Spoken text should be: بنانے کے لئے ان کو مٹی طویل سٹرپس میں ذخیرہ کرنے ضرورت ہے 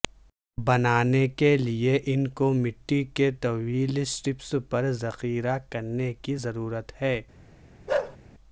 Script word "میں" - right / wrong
wrong